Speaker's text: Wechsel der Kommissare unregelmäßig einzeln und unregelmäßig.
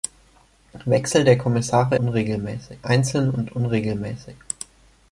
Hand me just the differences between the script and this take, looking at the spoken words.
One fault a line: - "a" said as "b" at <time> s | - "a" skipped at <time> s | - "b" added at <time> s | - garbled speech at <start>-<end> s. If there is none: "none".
none